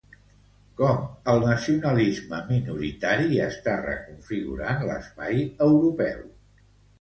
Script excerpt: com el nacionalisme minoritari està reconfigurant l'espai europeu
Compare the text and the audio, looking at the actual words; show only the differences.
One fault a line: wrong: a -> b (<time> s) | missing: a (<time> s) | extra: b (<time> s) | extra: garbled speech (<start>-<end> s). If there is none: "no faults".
no faults